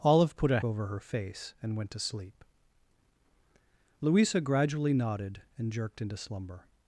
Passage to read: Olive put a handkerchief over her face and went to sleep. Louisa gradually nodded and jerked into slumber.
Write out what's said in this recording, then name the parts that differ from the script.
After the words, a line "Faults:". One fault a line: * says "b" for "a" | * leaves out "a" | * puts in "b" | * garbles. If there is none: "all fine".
Olive put a over her face and went to sleep. Louisa gradually nodded and jerked into slumber.
Faults:
* leaves out "handkerchief"